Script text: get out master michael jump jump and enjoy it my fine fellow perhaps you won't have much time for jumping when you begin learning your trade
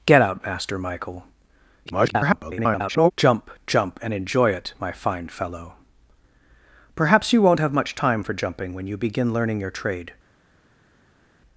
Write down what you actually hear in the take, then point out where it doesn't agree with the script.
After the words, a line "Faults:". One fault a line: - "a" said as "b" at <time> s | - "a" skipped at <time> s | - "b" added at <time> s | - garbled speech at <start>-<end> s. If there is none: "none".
get out master michael [garbled] jump jump and enjoy it my fine fellow perhaps you won't have much time for jumping when you begin learning your trade
Faults:
- garbled speech at 1.9-3.1 s